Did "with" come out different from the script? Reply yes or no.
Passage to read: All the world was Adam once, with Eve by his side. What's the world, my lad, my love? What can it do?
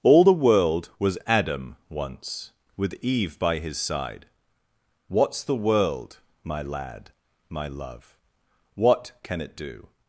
no